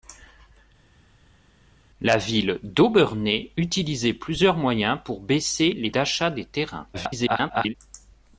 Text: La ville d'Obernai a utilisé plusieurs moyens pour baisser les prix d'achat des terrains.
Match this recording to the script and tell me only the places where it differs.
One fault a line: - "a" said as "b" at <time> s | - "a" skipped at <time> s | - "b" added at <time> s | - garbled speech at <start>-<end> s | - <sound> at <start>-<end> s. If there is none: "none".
- "a" skipped at 3.5 s
- "prix" skipped at 5.9 s
- garbled speech at 6.9-7.7 s